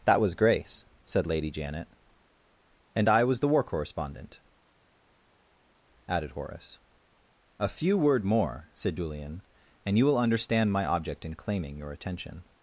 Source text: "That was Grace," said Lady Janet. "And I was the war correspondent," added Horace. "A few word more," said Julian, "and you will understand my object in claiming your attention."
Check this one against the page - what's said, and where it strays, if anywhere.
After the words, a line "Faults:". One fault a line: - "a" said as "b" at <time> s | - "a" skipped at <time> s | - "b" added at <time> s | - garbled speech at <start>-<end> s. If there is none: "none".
"That was Grace," said Lady Janet. "And I was the war correspondent," added Horace. "A few word more," said Julian, "and you will understand my object in claiming your attention."
Faults:
none